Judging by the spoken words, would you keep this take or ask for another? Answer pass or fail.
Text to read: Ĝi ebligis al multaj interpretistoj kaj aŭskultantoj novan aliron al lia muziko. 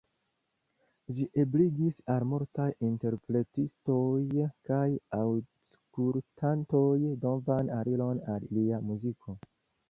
pass